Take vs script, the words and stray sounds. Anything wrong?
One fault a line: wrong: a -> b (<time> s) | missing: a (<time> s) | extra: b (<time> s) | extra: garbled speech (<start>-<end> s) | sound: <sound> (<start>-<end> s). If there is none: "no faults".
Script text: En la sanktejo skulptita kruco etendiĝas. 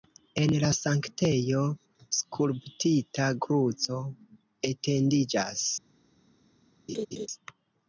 sound: laugh (6.9-7.3 s)